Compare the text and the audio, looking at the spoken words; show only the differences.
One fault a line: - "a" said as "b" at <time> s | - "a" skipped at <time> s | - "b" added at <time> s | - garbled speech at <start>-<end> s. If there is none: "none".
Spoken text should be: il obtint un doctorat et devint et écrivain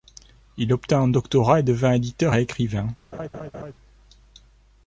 - "éditeur" added at 1.9 s